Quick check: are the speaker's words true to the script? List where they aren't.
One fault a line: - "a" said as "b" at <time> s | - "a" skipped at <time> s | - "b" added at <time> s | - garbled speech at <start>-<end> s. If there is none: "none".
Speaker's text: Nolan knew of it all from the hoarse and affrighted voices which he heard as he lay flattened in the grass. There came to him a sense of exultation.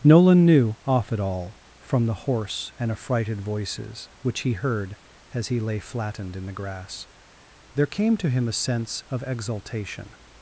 - "of" said as "off" at 0.9 s